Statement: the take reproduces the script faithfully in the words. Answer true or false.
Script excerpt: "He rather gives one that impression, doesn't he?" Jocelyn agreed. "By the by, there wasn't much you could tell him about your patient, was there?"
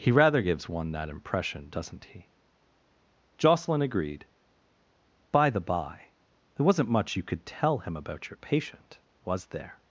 true